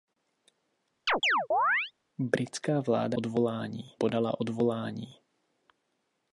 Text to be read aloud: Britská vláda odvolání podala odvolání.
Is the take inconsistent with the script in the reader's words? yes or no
no